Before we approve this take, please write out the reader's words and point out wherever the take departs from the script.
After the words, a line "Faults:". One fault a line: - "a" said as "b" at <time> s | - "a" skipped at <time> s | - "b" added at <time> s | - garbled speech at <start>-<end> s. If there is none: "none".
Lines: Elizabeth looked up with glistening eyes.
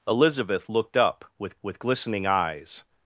Elizabeth looked up with with glistening eyes.
Faults:
- "with" added at 1.6 s